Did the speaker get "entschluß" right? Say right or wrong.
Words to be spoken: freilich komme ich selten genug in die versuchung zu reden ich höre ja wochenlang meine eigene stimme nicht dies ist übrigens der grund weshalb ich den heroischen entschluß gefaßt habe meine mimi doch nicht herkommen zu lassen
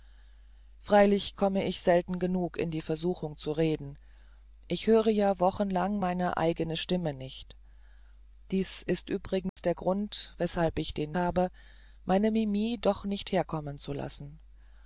wrong